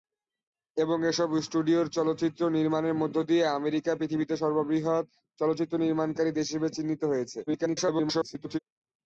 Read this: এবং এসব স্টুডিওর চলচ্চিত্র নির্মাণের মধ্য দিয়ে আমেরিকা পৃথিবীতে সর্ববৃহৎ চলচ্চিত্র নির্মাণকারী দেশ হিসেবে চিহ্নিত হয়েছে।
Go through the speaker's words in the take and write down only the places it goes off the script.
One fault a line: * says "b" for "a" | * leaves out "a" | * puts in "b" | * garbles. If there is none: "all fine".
* garbles